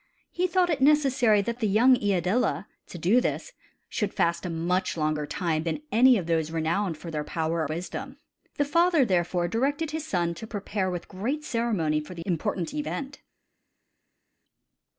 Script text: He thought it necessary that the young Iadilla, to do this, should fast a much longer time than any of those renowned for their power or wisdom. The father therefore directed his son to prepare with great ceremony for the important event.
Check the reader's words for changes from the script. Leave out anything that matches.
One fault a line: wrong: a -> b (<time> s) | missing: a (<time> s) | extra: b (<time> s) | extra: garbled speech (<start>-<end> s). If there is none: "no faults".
missing: or (7.7 s)